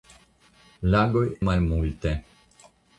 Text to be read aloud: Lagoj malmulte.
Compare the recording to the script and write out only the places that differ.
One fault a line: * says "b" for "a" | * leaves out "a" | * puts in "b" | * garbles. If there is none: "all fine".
all fine